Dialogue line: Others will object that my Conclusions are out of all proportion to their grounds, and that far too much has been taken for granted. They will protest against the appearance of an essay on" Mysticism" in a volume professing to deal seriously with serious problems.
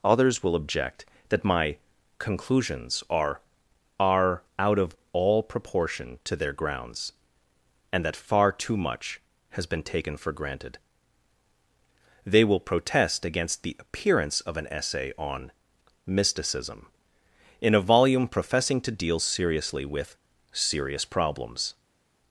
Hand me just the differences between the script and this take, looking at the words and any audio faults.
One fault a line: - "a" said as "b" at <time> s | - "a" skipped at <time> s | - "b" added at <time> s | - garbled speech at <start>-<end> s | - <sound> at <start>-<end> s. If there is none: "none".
- "are" added at 4.0 s